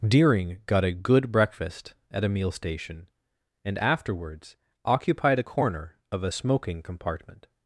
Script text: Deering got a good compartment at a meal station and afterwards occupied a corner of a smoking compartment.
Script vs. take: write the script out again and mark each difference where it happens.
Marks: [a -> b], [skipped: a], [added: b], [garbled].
Deering got a good [compartment -> breakfast] at a meal station and afterwards occupied a corner of a smoking compartment.